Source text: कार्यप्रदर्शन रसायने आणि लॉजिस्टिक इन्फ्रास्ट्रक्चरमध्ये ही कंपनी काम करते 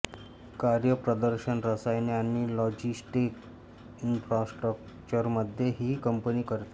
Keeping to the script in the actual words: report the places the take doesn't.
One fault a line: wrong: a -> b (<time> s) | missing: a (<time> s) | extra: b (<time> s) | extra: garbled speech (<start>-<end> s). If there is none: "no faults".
missing: काम (6.4 s)